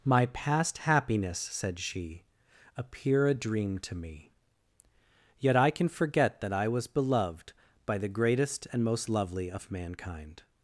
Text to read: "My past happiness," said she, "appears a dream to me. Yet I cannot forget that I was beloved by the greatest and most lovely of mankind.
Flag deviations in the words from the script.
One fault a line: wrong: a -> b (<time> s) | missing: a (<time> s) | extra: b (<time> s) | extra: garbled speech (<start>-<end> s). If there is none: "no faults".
wrong: appears -> appear (2.8 s)
wrong: cannot -> can (5.7 s)